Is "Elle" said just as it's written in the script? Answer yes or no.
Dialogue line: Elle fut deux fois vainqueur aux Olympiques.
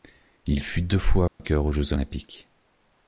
no